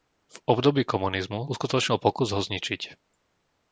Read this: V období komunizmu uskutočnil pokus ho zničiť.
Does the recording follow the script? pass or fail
pass